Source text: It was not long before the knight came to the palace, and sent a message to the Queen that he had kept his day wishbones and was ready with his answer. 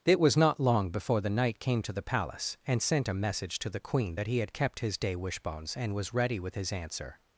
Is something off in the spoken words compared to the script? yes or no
no